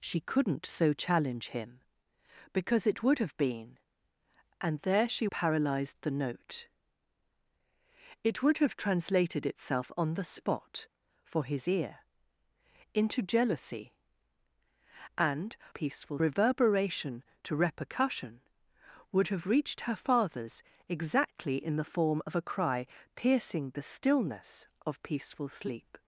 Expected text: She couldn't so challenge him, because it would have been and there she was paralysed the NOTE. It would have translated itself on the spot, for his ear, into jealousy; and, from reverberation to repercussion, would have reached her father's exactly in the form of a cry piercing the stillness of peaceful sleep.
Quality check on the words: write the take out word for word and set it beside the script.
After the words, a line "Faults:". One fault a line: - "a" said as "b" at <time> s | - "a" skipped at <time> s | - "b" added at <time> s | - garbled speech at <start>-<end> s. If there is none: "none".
She couldn't so challenge him, because it would have been and there she paralysed the NOTE. It would have translated itself on the spot, for his ear, into jealousy; and, peaceful reverberation to repercussion, would have reached her father's exactly in the form of a cry piercing the stillness of peaceful sleep.
Faults:
- "was" skipped at 5.3 s
- "from" said as "peaceful" at 15.7 s